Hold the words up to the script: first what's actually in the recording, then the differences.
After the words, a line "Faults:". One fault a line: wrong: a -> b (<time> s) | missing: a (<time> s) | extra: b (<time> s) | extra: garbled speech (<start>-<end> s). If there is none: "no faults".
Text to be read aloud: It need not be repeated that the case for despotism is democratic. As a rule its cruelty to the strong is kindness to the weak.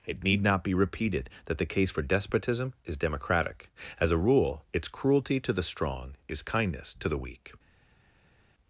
It need not be repeated that the case for despotism is democratic. As a rule its cruelty to the strong is kindness to the weak.
Faults:
no faults